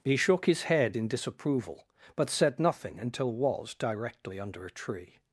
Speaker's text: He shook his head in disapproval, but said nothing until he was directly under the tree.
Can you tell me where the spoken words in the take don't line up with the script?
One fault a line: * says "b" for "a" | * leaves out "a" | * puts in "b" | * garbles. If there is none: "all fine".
* leaves out "he"
* says "a" for "the"